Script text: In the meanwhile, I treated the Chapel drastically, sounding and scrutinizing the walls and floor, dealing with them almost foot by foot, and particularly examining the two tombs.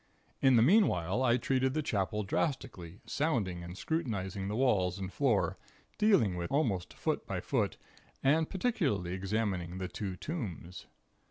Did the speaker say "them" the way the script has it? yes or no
no